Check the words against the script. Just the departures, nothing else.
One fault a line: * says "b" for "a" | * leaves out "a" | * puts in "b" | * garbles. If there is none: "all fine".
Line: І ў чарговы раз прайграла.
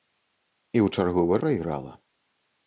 * leaves out "раз"